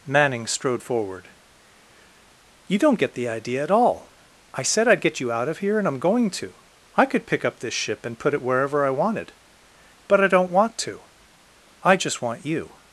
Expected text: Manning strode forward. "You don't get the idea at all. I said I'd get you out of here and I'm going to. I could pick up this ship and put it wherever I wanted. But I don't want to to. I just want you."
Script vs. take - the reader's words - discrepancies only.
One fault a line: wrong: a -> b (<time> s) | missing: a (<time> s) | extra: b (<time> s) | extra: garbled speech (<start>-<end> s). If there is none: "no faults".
missing: to (11.0 s)